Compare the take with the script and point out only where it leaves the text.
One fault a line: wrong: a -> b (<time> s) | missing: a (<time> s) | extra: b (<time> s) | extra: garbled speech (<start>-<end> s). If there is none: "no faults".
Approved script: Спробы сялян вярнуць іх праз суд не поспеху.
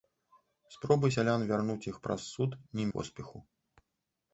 no faults